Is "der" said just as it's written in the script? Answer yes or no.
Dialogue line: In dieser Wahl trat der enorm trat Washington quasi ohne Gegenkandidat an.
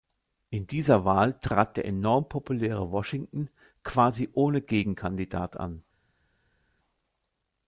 yes